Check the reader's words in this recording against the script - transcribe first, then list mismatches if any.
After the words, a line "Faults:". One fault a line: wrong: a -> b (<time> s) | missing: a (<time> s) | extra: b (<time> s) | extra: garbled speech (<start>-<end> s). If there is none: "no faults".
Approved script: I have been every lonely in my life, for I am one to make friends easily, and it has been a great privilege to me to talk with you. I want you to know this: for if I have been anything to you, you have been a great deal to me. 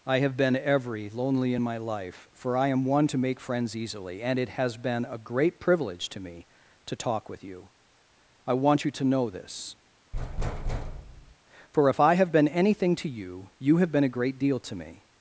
I have been every lonely in my life, for I am one to make friends easily, and it has been a great privilege to me to talk with you. I want you to know this: for if I have been anything to you, you have been a great deal to me.
Faults:
no faults